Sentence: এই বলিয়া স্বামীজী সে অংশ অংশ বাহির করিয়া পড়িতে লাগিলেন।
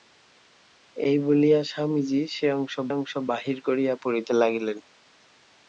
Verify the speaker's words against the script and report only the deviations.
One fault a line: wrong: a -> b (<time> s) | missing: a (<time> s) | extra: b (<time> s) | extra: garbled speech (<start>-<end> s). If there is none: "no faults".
no faults